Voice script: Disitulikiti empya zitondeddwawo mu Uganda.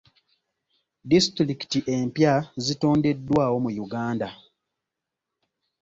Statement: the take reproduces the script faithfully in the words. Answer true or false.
true